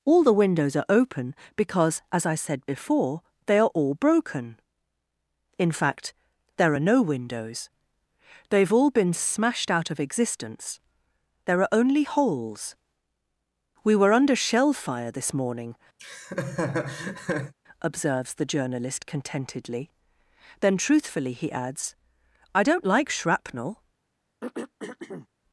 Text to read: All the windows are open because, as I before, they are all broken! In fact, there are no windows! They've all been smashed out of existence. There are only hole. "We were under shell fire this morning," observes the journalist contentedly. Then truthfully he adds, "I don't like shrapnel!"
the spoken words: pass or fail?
fail